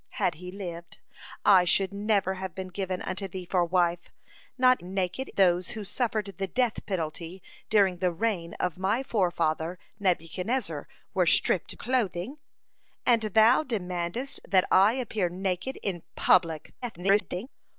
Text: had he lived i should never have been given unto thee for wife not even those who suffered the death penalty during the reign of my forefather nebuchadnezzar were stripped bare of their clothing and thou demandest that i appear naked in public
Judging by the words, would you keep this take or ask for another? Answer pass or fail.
fail